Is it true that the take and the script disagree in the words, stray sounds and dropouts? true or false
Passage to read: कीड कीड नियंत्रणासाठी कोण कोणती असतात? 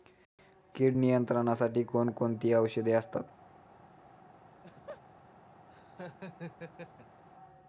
true